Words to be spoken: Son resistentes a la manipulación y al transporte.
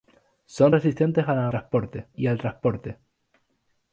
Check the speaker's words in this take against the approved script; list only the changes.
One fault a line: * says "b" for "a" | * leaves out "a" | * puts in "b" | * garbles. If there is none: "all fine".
* says "transporte" for "manipulación"